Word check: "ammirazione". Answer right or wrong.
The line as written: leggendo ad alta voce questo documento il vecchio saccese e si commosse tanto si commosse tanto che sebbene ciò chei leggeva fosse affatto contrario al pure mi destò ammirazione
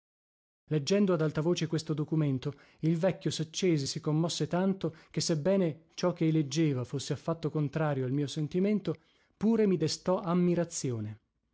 right